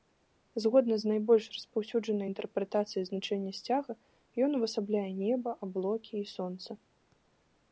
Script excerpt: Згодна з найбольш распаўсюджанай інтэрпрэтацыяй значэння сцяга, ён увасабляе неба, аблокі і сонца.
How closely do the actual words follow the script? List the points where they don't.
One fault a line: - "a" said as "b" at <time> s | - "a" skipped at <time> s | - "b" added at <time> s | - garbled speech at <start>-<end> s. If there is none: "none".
none